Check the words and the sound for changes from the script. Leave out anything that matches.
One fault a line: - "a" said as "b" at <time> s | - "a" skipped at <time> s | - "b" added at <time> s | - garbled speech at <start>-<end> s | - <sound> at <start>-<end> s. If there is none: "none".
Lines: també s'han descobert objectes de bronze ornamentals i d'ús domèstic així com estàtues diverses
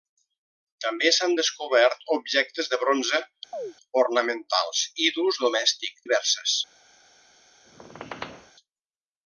- chirp at 3.5-3.7 s
- "així com estàtues" skipped at 6.0 s
- squeak at 7.6-8.5 s